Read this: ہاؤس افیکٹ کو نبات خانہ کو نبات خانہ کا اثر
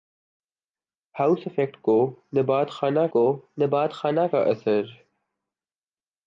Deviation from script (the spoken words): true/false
false